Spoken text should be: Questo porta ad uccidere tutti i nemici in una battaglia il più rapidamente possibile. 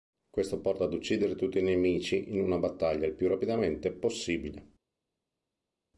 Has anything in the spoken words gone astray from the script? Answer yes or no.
no